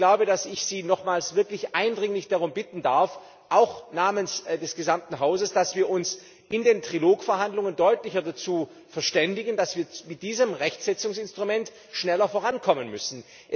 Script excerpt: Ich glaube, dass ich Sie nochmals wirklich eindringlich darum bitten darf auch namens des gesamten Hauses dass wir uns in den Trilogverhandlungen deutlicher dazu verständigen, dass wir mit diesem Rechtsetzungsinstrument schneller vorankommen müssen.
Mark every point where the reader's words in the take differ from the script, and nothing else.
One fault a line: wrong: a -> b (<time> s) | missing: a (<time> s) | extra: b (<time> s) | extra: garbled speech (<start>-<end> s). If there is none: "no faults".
no faults